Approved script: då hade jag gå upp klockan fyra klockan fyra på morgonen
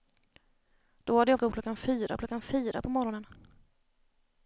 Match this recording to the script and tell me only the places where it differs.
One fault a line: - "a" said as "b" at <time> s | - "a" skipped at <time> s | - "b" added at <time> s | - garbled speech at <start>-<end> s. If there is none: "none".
none